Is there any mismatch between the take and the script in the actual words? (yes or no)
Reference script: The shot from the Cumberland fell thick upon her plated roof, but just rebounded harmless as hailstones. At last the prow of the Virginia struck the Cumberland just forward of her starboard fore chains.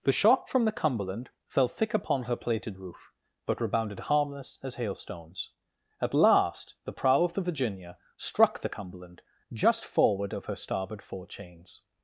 yes